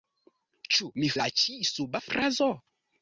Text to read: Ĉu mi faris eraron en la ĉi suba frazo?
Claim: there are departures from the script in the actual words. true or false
true